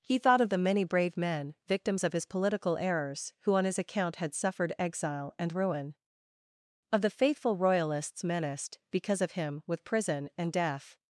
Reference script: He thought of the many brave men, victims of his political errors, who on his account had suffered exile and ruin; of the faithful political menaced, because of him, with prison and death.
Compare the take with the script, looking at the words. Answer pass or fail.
fail